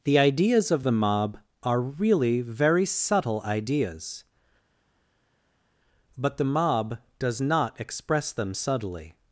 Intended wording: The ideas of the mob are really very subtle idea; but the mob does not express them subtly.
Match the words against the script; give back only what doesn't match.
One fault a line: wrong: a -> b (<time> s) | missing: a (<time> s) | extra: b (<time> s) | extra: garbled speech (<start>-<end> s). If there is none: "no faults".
wrong: idea -> ideas (3.4 s)